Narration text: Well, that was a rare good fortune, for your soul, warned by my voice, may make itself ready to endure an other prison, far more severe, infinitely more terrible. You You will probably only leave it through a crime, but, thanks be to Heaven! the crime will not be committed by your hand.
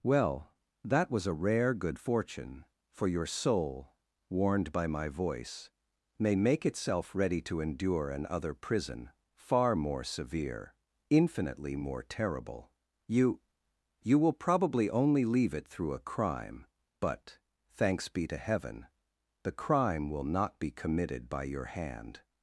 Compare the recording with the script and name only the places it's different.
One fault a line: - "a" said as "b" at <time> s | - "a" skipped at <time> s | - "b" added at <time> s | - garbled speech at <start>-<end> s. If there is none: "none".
none